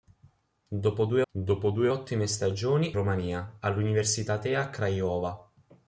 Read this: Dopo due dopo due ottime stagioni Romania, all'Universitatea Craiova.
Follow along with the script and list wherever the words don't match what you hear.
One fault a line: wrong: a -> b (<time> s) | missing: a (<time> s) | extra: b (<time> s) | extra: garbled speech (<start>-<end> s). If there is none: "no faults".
no faults